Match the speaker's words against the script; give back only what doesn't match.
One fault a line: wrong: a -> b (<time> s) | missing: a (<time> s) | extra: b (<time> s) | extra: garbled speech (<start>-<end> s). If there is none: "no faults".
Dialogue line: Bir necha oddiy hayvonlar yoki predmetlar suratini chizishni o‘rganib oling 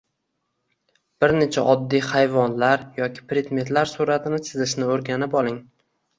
no faults